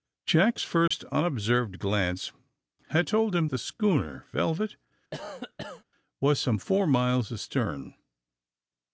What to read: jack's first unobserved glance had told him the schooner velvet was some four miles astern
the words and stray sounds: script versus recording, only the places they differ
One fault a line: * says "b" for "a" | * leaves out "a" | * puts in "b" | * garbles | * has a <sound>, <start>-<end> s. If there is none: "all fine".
* has a dropout, 0.9-0.9 s
* has a cough, 5.1-5.8 s